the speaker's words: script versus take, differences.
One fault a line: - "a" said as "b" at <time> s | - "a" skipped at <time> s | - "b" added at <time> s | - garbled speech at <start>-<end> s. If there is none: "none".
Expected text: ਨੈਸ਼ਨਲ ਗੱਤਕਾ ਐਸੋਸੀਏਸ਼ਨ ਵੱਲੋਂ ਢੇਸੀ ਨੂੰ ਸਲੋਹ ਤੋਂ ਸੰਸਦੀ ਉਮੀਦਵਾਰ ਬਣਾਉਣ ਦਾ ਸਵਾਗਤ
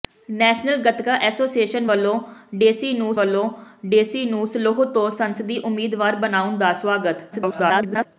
- "ਵੱਲੋਂ ਢੇਸੀ ਨੂੰ" added at 3.1 s
- garbled speech at 7.3-8.1 s